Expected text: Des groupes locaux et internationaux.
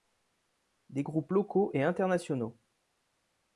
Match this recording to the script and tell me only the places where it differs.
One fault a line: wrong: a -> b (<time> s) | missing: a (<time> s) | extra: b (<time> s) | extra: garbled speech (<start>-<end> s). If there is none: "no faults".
no faults